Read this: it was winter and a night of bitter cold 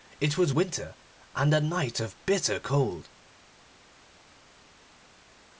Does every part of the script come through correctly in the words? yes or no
yes